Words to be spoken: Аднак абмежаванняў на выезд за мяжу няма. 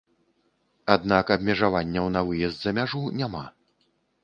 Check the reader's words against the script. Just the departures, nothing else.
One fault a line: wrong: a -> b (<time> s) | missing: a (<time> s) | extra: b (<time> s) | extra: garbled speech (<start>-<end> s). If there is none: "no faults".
no faults